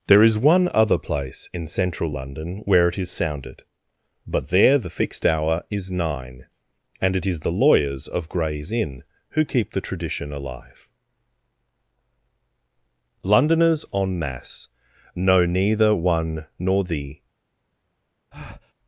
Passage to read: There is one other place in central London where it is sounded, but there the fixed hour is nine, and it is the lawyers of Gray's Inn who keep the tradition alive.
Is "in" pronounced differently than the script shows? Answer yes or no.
no